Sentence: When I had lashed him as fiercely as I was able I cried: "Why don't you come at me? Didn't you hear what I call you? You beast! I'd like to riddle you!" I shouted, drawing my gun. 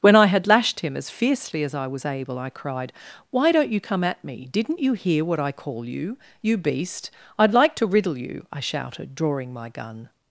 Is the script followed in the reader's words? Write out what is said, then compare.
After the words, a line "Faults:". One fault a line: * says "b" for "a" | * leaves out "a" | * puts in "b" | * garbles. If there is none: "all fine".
When I had lashed him as fiercely as I was able I cried: "Why don't you come at me? Didn't you hear what I call you? You beast! I'd like to riddle you!" I shouted, drawing my gun.
Faults:
all fine